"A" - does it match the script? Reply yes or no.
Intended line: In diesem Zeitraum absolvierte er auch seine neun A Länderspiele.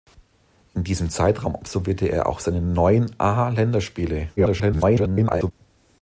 yes